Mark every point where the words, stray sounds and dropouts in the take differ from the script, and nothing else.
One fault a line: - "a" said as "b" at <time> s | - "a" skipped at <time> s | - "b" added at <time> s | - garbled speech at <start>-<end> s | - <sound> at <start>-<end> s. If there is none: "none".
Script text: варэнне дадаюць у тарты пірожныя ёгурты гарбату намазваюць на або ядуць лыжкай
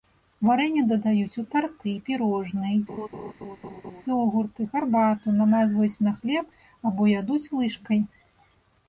- laugh at 2.9-4.0 s
- "хлеб" added at 6.2 s